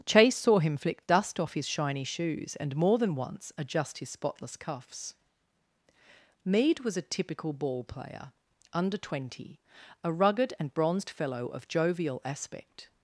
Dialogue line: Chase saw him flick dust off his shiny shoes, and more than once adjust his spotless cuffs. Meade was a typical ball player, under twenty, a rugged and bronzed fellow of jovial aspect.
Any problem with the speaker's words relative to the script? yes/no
no